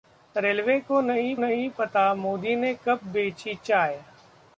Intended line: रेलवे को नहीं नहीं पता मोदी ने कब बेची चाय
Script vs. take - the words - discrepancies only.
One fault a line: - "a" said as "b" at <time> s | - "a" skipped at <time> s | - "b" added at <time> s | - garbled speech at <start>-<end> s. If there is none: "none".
none